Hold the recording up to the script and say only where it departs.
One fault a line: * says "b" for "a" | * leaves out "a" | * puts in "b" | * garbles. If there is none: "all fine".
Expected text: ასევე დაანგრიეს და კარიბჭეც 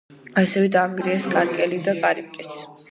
* puts in "კანკელი"